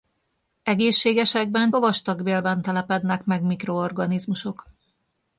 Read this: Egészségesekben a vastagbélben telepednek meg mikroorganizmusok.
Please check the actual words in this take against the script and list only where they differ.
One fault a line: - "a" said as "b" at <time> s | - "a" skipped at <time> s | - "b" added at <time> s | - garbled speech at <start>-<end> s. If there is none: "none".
none